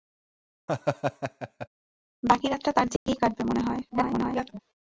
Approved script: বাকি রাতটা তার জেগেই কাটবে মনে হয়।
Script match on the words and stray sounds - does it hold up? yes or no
no